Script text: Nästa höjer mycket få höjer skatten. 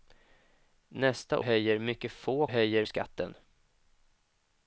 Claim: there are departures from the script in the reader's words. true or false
false